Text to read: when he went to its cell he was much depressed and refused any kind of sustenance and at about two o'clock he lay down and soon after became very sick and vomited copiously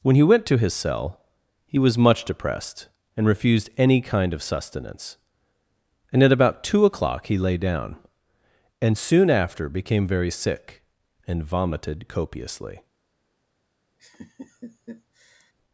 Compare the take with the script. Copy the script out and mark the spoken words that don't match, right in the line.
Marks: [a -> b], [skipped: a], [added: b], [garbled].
when he went to [its -> his] cell he was much depressed and refused any kind of sustenance and at about two o'clock he lay down and soon after became very sick and vomited copiously